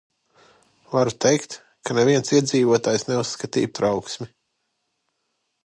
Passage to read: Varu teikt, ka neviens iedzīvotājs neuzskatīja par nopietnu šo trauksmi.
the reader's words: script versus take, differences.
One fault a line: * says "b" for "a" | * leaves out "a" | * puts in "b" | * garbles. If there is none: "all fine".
* leaves out "par nopietnu šo"